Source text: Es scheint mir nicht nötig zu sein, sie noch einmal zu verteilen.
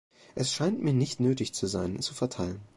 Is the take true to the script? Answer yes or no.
no